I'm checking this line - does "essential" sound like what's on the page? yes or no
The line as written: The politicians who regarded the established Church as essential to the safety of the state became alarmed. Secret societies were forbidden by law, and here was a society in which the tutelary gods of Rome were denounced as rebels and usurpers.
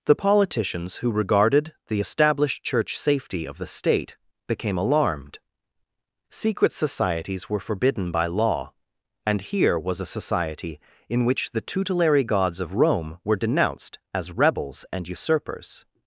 no